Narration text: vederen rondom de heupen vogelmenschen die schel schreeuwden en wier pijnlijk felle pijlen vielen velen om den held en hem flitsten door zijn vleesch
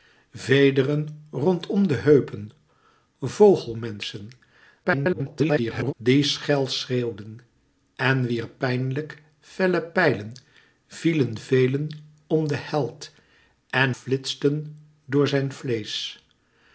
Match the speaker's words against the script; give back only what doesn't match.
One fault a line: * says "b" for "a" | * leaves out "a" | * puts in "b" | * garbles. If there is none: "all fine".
* garbles
* leaves out "hem"